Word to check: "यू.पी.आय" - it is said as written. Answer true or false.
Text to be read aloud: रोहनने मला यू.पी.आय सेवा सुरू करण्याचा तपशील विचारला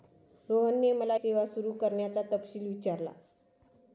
false